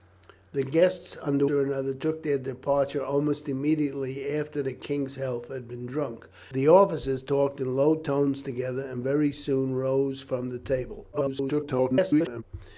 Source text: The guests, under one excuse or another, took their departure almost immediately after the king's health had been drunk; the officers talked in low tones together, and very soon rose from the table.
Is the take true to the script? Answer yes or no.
no